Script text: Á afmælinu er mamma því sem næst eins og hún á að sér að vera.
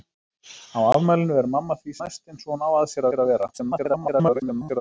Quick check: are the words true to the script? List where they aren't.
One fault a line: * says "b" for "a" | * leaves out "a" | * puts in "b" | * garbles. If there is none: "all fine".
* leaves out "sem"
* puts in "sér"
* garbles